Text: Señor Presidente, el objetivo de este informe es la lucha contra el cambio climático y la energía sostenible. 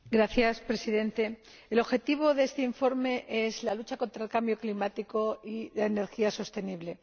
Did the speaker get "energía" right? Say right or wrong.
right